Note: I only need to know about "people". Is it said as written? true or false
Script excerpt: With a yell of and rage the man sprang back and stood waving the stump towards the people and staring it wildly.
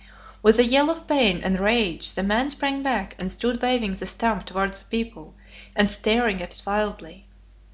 true